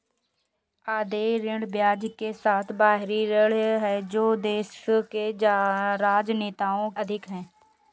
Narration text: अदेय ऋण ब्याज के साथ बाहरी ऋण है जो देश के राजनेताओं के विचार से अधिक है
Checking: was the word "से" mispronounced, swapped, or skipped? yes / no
yes